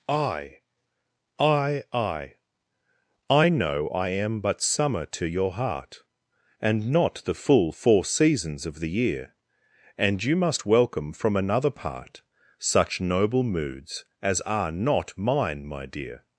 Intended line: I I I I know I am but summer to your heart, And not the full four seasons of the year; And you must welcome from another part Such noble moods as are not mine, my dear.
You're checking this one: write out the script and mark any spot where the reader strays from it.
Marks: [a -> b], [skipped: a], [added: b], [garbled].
I I I I know I am but summer to your heart, And not the full four seasons of the year; And you must welcome from another part Such noble moods as are not mine, my dear.